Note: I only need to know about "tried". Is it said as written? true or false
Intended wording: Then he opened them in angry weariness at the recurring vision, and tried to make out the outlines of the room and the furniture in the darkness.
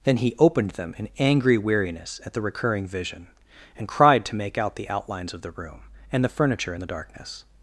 false